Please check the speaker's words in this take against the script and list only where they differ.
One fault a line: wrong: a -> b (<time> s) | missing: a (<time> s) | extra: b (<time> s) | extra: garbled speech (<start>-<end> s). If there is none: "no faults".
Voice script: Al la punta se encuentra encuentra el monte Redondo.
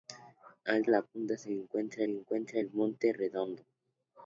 no faults